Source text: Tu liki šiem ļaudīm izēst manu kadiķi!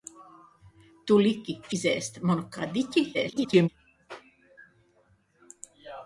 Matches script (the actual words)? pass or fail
fail